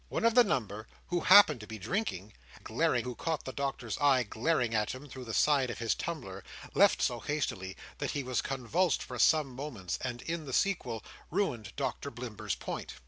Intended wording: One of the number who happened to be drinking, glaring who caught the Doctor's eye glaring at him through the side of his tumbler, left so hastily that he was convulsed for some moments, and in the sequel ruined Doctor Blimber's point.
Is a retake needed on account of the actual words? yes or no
no